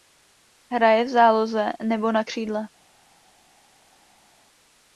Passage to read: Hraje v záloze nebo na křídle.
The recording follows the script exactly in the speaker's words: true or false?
true